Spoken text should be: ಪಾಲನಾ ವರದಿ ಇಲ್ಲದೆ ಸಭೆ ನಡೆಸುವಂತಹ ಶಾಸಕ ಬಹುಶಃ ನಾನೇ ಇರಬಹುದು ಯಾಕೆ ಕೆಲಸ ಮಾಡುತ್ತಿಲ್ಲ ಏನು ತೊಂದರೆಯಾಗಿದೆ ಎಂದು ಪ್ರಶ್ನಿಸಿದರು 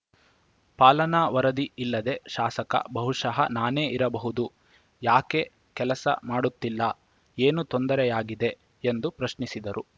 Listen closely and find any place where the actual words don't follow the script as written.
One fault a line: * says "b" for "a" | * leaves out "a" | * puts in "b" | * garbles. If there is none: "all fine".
* leaves out "ಸಭೆ ನಡೆಸುವಂತಹ"